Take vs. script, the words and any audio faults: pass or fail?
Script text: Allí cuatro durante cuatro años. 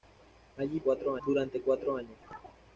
pass